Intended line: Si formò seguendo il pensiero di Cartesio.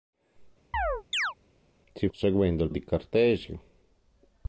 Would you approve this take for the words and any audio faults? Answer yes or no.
no